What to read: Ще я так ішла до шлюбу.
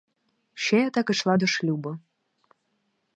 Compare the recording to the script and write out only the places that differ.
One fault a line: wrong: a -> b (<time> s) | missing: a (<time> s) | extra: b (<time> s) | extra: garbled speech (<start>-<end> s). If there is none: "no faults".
no faults